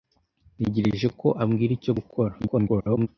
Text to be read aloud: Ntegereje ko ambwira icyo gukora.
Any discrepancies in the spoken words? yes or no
yes